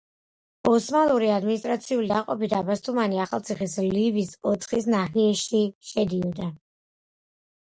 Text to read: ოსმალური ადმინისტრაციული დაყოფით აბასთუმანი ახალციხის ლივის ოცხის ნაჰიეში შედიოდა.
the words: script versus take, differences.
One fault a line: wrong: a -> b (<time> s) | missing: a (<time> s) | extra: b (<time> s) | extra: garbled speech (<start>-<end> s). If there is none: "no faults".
no faults